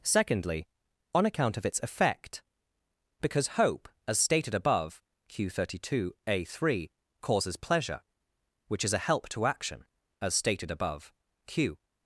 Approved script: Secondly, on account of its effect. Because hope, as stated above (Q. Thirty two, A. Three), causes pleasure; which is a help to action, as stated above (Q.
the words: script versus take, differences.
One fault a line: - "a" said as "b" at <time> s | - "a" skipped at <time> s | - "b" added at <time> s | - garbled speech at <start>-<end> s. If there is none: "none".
none